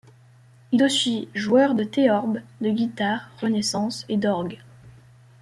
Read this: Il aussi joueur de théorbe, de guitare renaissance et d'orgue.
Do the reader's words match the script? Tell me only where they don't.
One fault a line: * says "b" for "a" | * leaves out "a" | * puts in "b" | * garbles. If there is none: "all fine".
all fine